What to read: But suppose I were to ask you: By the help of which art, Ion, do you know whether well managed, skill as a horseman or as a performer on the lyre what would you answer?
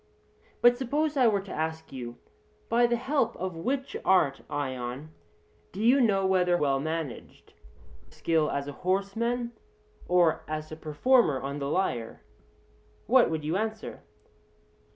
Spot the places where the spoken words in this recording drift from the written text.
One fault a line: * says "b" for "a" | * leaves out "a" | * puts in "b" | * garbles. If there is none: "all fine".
all fine